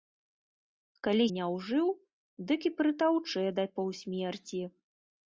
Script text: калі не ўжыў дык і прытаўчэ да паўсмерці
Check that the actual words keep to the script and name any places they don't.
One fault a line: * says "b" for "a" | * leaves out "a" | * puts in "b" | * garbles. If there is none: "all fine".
all fine